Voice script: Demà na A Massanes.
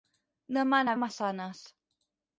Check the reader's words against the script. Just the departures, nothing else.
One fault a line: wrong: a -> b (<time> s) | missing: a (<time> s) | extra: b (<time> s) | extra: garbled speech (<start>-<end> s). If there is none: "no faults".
no faults